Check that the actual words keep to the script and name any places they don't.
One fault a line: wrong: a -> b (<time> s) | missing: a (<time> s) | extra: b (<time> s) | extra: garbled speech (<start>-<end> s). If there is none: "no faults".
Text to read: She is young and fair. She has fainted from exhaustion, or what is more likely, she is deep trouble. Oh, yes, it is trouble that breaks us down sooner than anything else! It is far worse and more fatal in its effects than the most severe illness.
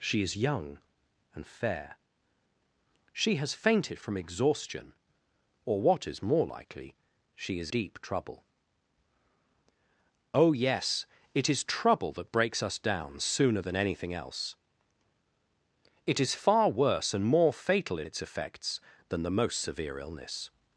no faults